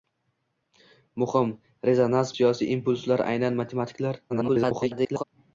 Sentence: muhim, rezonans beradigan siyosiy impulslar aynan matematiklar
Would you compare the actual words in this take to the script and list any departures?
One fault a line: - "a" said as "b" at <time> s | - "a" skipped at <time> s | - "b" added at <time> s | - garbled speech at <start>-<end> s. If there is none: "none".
- "beradigan" skipped at 2.3 s
- garbled speech at 4.3-5.2 s